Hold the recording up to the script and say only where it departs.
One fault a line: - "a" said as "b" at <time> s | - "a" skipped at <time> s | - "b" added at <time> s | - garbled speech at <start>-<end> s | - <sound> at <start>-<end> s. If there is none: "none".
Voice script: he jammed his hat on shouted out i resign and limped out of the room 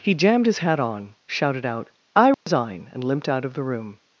- dropout at 2.3-2.5 s